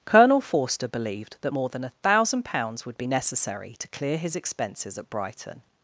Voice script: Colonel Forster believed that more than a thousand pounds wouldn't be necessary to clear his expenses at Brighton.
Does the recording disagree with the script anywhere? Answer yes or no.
yes